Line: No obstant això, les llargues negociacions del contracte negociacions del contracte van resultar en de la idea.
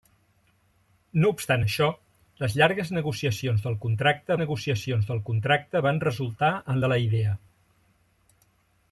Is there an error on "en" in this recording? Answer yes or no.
no